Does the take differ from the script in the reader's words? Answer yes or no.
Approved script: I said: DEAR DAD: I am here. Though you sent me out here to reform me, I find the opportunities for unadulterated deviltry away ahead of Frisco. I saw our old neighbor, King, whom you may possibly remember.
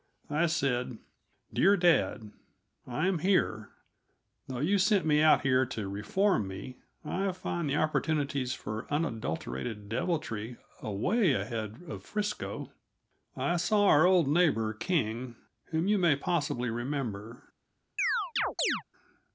no